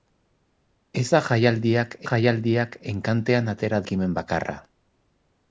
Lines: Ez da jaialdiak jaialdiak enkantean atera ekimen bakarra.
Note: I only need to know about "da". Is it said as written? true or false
true